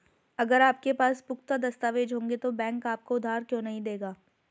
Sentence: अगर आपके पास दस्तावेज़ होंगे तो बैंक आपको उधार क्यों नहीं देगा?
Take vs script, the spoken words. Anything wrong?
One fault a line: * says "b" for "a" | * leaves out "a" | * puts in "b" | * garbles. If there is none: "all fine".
* puts in "पुख्ता"